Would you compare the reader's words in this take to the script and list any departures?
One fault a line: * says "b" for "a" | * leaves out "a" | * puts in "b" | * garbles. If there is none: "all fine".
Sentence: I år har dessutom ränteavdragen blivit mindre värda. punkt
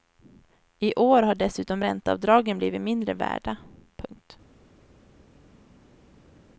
all fine